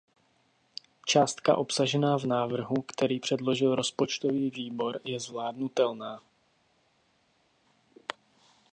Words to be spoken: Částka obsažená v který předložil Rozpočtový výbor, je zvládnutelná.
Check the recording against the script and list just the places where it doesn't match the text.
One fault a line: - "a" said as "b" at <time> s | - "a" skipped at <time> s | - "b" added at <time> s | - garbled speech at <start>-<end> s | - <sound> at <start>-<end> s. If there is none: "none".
- "návrhu" added at 2.2 s